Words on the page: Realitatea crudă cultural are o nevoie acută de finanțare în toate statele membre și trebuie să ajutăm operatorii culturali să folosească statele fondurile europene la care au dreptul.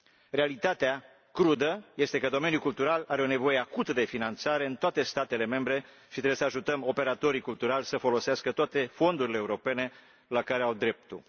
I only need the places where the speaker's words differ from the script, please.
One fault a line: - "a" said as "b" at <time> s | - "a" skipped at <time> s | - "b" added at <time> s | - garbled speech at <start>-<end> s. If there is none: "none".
- "este că domeniul" added at 1.9 s
- "statele" said as "toate" at 8.5 s